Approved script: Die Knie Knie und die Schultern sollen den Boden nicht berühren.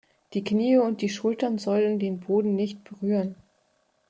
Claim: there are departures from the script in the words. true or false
true